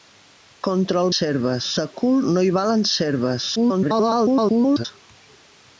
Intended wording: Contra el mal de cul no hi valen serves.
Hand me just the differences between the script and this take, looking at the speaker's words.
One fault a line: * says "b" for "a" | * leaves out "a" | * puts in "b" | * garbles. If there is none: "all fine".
* says "serves" for "mal"
* garbles